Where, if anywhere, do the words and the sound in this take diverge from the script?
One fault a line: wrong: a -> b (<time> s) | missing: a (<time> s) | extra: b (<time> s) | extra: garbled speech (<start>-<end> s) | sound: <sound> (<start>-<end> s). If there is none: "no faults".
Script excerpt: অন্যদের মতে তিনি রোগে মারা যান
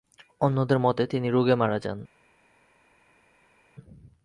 no faults